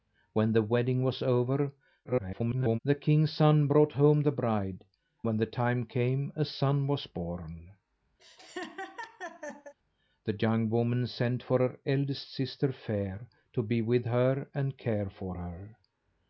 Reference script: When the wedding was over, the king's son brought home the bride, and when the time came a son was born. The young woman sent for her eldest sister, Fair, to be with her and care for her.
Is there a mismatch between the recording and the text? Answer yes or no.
yes